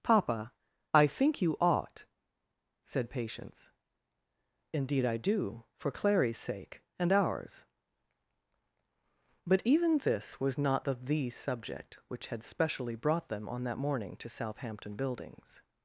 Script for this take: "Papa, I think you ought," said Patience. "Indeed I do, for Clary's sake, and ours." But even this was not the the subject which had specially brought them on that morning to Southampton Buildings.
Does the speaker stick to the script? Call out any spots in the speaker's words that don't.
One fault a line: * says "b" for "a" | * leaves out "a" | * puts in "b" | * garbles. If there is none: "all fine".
all fine